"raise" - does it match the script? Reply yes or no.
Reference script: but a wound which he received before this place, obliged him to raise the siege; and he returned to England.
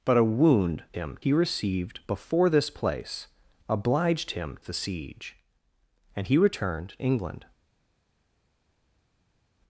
no